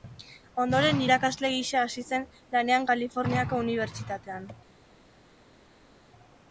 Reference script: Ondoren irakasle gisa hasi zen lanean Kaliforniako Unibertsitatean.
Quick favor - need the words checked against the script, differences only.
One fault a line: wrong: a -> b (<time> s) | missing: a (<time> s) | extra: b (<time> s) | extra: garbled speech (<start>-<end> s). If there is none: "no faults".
no faults